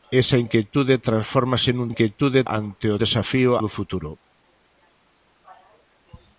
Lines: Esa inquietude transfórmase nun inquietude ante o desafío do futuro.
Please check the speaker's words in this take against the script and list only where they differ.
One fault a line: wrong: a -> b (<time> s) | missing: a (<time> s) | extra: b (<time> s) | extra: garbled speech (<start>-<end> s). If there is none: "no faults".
no faults